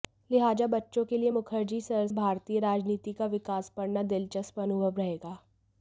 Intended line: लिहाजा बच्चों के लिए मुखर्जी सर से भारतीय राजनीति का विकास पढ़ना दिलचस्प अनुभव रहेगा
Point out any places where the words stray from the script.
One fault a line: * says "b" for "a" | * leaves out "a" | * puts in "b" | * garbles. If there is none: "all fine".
* leaves out "से"